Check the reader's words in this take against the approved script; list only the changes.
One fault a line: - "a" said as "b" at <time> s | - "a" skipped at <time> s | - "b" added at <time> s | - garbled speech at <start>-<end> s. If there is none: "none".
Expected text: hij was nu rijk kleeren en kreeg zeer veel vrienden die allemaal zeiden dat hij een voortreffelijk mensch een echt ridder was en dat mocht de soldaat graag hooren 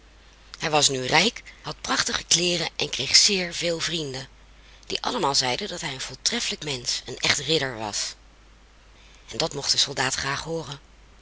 - "had prachtige" added at 1.6 s